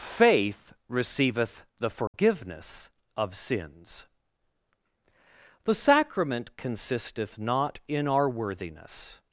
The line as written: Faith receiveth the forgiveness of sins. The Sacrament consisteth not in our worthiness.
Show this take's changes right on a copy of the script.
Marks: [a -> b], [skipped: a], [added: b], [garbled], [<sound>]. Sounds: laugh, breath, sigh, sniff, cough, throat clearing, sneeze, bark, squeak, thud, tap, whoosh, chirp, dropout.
Faith receiveth the forgiveness [dropout] of sins. The Sacrament consisteth not in our worthiness.